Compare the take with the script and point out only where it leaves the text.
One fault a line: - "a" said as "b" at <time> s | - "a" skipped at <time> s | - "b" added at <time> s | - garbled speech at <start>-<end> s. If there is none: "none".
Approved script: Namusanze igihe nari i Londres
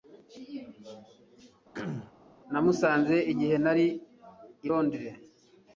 none